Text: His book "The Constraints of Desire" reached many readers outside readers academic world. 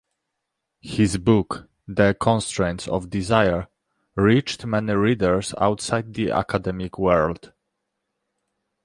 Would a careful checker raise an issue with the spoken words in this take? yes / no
yes